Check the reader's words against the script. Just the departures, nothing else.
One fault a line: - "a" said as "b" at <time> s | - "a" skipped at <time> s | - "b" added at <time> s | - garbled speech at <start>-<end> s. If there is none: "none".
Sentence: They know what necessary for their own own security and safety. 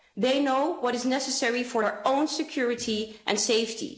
- "is" added at 0.9 s
- "own" skipped at 2.3 s